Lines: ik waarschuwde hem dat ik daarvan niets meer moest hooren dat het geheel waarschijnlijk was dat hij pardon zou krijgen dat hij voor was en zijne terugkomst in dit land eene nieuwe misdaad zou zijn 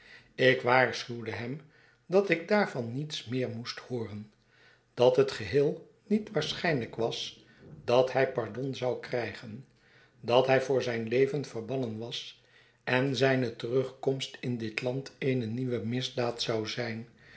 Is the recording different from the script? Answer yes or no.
yes